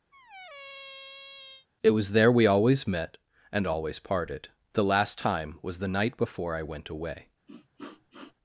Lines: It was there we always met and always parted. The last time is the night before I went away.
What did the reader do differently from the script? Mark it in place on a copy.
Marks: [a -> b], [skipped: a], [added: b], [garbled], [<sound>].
[squeak] It was there we always met and always parted. The last time [is -> was] the night before I went away. [sniff]